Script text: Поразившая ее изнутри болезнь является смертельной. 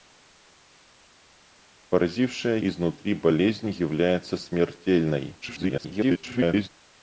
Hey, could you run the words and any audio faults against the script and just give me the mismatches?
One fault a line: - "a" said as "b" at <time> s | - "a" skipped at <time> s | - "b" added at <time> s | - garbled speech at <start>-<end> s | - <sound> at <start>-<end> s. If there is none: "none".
- "ее" skipped at 2.6 s
- garbled speech at 5.4-6.7 s